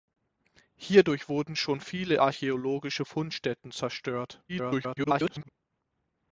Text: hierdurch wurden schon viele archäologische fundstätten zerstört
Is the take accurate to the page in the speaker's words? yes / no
no